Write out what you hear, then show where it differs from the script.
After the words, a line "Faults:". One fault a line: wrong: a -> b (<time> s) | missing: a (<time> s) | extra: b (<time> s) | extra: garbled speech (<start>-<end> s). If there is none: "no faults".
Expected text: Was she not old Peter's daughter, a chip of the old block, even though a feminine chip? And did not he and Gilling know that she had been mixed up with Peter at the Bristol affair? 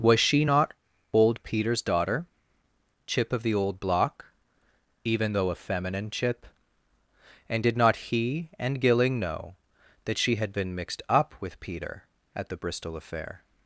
Was she not old Peter's daughter, chip of the old block, even though a feminine chip? And did not he and Gilling know that she had been mixed up with Peter at the Bristol affair?
Faults:
missing: a (2.3 s)